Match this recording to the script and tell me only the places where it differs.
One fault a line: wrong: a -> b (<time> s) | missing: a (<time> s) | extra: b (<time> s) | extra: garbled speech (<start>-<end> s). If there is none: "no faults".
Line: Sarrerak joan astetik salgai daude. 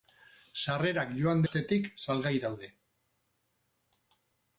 no faults